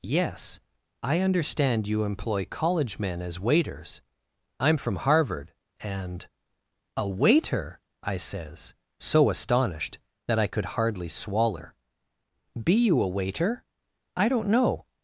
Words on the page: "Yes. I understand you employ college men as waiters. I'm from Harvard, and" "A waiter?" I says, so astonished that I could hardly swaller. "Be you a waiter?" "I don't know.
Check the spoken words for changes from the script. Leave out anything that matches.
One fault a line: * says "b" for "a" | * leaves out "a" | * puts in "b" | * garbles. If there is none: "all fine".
all fine